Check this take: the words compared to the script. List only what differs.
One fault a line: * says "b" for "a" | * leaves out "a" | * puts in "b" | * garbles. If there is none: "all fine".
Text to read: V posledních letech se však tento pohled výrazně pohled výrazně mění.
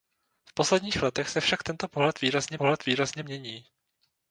all fine